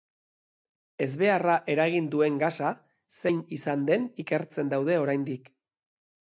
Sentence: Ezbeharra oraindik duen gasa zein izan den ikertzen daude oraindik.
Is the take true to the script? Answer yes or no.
no